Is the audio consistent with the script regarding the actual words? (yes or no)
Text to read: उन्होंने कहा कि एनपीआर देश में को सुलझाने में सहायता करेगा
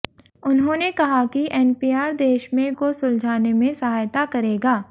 yes